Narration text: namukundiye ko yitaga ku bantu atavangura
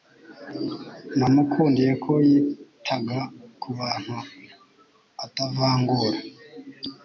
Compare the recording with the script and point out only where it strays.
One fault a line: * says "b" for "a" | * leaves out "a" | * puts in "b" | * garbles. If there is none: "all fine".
all fine